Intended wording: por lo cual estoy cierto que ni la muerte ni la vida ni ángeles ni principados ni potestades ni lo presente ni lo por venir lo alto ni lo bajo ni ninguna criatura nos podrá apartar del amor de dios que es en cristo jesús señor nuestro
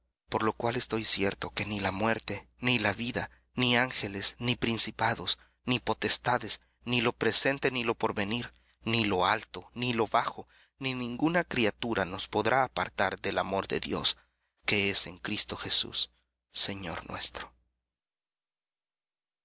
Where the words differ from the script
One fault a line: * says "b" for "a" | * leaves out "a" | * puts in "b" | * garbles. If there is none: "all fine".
* puts in "ni"